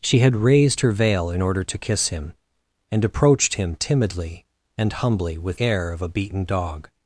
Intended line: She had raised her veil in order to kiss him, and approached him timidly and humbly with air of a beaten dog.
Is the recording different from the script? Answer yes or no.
no